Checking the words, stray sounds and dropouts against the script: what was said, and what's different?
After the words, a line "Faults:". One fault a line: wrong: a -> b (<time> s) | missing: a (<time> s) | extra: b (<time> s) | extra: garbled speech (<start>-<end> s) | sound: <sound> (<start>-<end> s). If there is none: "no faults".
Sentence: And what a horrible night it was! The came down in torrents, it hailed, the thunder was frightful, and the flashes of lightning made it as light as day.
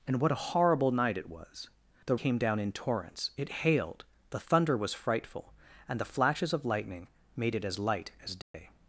And what a horrible night it was! The came down in torrents, it hailed, the thunder was frightful, and the flashes of lightning made it as light as day.
Faults:
sound: dropout (8.4-8.5 s)